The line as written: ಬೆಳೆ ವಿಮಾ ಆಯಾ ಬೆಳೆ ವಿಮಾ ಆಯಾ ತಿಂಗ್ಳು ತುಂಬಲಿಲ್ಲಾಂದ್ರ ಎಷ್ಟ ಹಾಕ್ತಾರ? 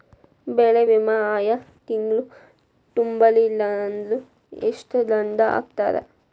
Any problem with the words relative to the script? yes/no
yes